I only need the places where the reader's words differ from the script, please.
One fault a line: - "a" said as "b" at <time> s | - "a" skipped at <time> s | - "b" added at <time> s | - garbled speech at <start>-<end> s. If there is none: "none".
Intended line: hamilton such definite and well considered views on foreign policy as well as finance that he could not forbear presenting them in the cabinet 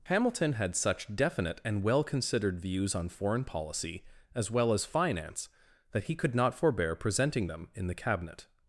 - "had" added at 0.5 s